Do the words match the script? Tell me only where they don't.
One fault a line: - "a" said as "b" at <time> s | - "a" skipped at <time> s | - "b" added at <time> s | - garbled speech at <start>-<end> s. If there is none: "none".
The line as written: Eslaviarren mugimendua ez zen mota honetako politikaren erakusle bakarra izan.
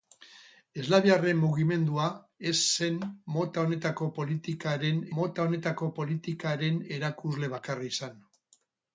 - "mota honetako politikaren" added at 5.2 s